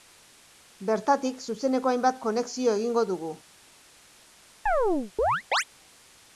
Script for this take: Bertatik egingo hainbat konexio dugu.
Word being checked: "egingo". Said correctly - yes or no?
no